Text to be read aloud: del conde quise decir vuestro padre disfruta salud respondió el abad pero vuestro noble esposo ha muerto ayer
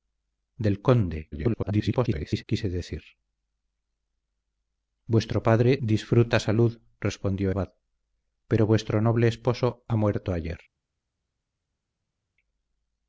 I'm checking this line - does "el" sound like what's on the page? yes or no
no